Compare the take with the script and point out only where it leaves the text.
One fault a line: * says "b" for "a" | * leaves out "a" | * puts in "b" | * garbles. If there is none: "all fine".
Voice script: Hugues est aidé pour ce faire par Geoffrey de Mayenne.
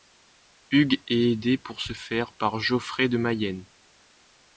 all fine